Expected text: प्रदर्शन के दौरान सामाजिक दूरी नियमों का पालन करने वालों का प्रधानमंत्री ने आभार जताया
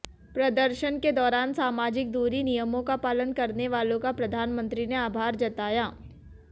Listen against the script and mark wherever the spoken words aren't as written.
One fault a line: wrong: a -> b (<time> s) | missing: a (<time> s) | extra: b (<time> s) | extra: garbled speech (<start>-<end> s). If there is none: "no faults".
no faults